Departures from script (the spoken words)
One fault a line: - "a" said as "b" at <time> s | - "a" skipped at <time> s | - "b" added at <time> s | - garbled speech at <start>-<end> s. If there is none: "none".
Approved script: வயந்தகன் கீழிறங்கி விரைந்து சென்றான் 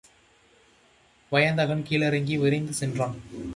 none